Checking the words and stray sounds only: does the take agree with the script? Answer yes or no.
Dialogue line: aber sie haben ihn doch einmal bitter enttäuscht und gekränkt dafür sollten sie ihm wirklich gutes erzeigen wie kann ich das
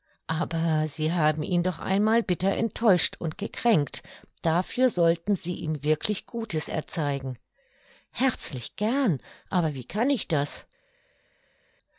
no